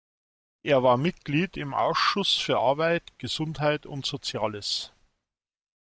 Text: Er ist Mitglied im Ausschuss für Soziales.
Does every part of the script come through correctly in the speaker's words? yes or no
no